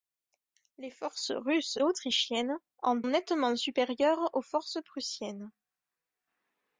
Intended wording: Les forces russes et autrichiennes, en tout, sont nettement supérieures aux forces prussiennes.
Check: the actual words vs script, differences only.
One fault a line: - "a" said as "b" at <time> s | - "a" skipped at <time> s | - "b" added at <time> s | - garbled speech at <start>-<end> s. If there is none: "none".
- "et" skipped at 1.8 s
- "tout sont" skipped at 3.0 s